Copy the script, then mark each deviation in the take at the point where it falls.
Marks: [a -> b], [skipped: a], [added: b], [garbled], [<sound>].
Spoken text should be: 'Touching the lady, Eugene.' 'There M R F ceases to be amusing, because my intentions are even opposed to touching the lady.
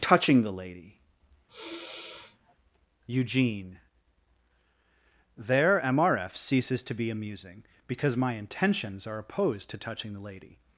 'Touching the lady, [sigh] Eugene.' 'There M R F ceases to be amusing, because my intentions are [skipped: even] opposed to touching the lady.